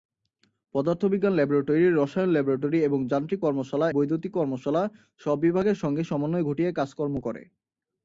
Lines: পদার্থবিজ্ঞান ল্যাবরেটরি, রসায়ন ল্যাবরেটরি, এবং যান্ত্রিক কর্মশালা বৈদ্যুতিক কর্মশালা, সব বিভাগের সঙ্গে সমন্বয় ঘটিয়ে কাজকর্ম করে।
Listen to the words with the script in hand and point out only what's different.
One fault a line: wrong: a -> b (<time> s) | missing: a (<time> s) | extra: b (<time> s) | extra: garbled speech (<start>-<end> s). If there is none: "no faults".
no faults